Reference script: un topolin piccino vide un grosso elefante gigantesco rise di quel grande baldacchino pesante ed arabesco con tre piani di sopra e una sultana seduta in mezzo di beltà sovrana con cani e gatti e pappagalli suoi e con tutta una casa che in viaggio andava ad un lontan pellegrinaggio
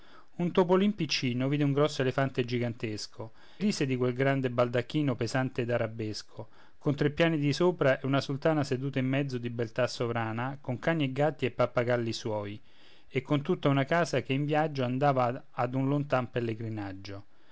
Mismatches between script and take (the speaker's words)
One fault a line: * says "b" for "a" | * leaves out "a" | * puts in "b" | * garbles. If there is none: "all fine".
all fine